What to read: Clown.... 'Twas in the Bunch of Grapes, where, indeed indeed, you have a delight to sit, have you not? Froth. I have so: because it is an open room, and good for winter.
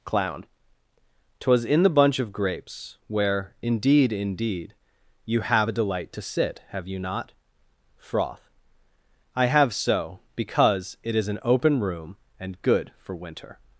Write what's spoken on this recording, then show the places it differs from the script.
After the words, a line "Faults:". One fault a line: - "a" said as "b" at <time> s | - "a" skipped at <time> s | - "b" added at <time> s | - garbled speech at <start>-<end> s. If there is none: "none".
Clown.... 'Twas in the Bunch of Grapes, where, indeed indeed, you have a delight to sit, have you not? Froth. I have so: because it is an open room, and good for winter.
Faults:
none